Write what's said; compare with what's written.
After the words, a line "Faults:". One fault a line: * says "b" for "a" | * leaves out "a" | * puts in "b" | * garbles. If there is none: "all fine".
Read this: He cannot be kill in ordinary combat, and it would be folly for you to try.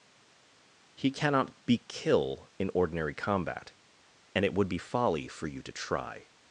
He cannot be kill in ordinary combat, and it would be folly for you to try.
Faults:
all fine